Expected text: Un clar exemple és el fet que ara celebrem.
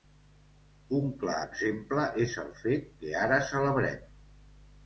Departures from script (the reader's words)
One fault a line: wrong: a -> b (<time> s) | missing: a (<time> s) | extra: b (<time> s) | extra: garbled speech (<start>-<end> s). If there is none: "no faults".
no faults